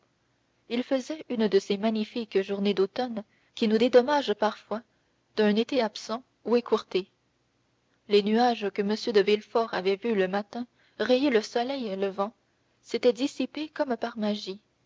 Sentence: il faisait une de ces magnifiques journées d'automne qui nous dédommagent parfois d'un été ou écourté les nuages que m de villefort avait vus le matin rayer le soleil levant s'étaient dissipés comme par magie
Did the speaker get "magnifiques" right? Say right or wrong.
right